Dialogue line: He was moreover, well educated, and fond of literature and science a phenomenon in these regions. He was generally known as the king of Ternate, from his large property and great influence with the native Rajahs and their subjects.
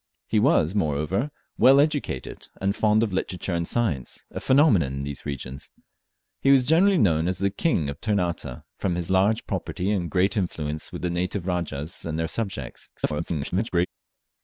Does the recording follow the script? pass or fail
fail